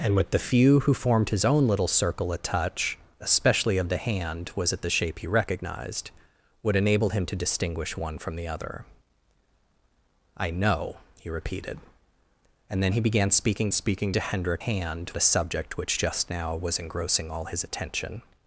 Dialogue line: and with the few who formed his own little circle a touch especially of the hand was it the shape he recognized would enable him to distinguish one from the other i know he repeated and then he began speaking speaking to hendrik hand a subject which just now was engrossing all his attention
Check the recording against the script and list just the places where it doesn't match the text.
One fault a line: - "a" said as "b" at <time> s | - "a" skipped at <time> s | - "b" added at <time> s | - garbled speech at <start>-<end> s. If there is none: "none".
none